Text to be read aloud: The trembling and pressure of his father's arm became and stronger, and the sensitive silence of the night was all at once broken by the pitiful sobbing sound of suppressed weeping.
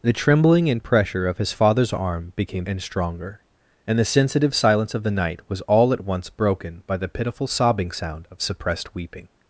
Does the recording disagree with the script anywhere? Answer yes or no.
no